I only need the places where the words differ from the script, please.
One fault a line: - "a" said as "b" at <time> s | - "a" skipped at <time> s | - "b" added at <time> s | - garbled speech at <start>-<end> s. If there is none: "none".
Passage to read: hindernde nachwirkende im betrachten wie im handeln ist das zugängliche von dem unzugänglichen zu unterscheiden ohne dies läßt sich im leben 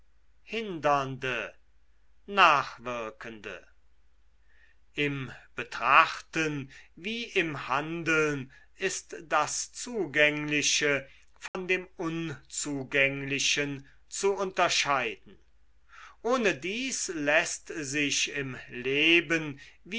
none